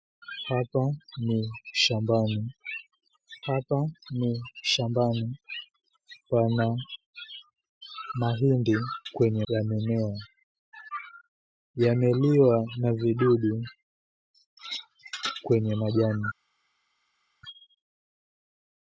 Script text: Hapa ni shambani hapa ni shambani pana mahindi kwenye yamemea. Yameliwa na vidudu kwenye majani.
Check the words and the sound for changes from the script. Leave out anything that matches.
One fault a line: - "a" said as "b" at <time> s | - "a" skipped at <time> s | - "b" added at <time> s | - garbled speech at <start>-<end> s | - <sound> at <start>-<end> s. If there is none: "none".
none